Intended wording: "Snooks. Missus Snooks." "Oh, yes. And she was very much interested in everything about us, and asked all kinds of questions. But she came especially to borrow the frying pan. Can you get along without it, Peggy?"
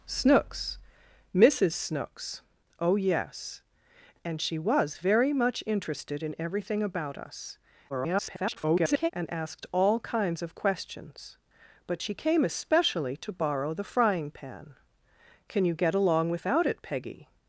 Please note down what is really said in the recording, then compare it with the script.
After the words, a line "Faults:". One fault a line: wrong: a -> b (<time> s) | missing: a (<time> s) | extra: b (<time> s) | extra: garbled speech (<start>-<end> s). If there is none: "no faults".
"Snooks. Missus Snooks." "Oh, yes. And she was very much interested in everything about us, [garbled] and asked all kinds of questions. But she came especially to borrow the frying pan. Can you get along without it, Peggy?"
Faults:
extra: garbled speech (7.9-9.1 s)